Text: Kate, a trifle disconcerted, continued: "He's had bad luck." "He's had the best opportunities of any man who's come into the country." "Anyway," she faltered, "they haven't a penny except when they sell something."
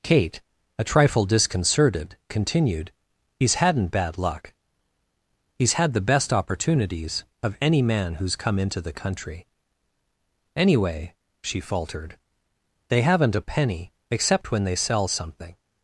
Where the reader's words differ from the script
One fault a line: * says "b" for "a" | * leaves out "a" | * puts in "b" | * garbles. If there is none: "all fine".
* says "hadn't" for "had"